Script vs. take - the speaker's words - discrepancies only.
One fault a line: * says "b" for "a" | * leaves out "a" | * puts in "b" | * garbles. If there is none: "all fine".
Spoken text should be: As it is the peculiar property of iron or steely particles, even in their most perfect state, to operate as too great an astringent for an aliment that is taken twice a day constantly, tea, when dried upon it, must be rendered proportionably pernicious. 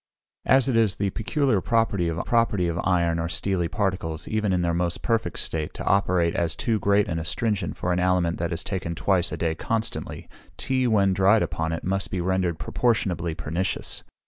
* puts in "property of"